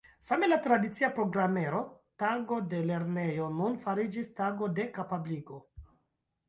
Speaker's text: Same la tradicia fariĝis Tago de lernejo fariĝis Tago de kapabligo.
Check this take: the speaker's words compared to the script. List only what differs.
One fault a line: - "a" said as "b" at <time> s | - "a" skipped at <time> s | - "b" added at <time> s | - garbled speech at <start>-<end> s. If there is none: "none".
- "fariĝis" said as "programero" at 1.2 s
- "nun" added at 3.6 s